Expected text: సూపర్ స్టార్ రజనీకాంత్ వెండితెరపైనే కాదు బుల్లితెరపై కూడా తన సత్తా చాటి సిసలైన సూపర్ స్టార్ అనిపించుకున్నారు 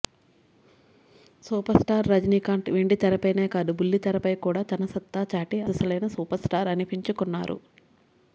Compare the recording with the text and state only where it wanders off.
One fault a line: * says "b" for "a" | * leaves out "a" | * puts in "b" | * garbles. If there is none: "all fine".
all fine